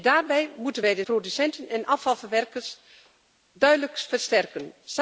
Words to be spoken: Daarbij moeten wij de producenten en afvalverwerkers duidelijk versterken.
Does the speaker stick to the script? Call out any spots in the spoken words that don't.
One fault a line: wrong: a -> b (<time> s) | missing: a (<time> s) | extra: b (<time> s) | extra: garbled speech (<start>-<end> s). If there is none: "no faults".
no faults